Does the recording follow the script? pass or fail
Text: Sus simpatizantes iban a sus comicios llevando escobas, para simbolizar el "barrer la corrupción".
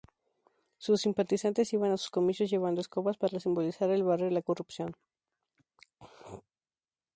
pass